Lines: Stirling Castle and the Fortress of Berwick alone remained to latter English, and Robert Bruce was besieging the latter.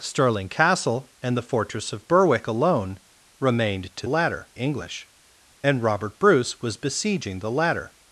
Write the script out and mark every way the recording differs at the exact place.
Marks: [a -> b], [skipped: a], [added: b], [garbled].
Stirling Castle and the Fortress of Berwick alone remained to latter English, and Robert Bruce was besieging the latter.